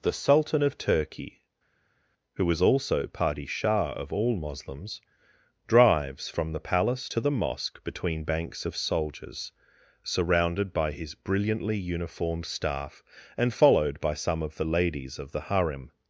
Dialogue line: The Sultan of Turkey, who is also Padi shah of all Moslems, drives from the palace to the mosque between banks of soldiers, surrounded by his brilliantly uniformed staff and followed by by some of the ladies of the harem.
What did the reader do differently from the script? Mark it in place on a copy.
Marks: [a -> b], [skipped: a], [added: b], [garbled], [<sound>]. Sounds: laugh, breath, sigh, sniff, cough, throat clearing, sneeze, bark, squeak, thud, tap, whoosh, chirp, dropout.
The Sultan of Turkey, who is also Padi shah of all Moslems, drives from the palace to the mosque between banks of soldiers, surrounded by his brilliantly uniformed staff and followed by [skipped: by] some of the ladies of the harem.